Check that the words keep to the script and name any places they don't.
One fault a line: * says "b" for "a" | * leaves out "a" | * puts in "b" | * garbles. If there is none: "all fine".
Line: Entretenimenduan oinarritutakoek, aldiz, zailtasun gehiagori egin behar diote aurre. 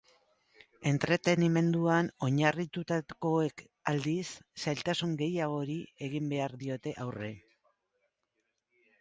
all fine